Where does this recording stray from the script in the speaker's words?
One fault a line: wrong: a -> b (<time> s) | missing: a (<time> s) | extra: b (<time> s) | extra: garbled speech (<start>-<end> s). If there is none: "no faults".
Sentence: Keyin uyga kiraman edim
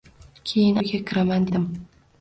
no faults